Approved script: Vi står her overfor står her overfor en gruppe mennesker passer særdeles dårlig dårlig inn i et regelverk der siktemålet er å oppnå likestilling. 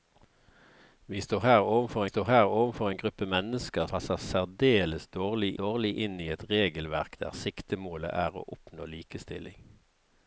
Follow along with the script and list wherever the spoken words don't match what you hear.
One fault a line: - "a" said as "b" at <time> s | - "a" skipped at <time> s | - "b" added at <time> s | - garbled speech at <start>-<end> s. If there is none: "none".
none